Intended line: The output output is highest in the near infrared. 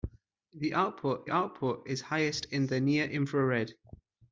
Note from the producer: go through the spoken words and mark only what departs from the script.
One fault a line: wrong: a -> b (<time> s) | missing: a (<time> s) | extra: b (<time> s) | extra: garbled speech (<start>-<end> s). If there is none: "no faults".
no faults